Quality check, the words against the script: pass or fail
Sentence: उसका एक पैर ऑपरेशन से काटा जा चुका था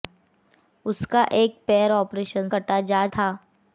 fail